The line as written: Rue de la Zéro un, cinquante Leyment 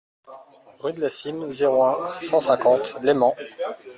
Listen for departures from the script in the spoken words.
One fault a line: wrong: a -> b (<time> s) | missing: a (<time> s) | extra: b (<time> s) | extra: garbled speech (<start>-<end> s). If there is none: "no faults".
extra: Cîme (1.1 s)
extra: cent (2.2 s)